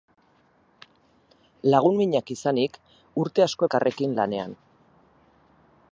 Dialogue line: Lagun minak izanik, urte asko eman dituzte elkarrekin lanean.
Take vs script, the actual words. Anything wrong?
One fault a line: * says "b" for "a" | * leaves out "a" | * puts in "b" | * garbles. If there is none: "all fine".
* leaves out "eman dituzte"